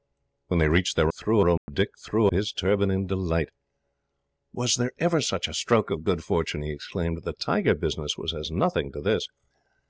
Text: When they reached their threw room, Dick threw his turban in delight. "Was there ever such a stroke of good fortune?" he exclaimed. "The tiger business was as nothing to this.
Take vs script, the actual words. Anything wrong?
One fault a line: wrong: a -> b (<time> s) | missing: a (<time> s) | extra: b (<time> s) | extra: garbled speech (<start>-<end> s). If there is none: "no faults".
no faults